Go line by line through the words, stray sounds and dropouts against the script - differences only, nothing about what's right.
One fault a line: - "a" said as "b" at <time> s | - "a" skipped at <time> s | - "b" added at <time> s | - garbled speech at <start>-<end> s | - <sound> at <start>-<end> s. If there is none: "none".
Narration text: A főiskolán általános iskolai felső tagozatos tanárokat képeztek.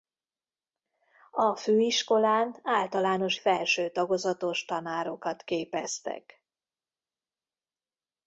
- "iskolai" skipped at 3.4 s